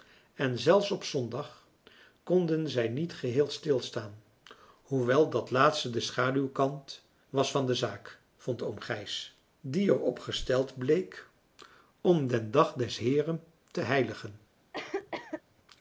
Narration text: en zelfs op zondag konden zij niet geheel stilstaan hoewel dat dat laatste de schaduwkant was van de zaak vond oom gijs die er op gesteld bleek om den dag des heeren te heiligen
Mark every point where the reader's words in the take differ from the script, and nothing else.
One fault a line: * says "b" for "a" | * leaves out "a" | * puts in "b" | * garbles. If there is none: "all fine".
* leaves out "dat"